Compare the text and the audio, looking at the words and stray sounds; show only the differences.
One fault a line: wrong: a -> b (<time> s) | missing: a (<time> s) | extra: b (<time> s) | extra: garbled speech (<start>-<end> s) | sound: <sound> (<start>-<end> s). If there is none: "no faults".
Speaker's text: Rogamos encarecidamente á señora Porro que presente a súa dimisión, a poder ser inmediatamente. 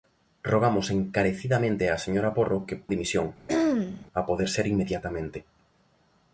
missing: presente a súa (2.8 s)
sound: throat clearing (3.5-4.1 s)